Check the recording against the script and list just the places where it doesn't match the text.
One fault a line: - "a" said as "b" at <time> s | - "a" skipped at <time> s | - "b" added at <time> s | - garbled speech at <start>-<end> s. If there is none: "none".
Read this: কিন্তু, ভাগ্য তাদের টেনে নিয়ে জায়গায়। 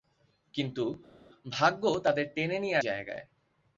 none